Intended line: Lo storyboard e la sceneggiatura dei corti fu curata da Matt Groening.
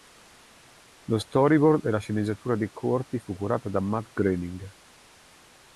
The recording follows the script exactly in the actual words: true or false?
true